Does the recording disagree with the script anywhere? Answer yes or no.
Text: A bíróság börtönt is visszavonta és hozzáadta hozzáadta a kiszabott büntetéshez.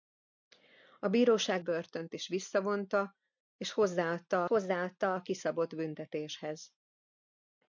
no